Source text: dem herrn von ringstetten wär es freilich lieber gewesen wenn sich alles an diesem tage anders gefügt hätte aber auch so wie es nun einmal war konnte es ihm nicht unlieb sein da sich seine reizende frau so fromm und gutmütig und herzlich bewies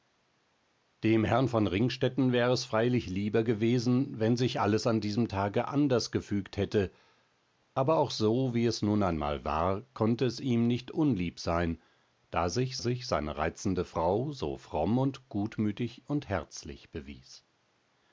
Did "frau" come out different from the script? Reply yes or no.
no